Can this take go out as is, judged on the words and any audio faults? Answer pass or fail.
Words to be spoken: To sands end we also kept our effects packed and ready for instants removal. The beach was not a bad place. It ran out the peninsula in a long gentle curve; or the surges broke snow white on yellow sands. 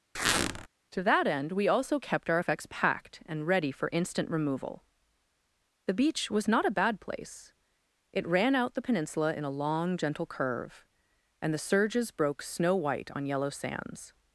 fail